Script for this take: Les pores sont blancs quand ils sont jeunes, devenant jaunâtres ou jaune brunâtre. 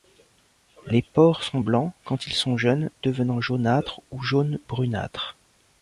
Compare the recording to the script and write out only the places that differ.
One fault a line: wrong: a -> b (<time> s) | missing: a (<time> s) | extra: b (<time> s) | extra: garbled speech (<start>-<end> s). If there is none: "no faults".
no faults